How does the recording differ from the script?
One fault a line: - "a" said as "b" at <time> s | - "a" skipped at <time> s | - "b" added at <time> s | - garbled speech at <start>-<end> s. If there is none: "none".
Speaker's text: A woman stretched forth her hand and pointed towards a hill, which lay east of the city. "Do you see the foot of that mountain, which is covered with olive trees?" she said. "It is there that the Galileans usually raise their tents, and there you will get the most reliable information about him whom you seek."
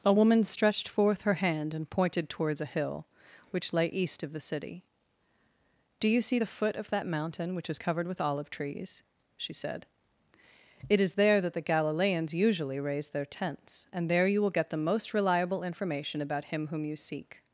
none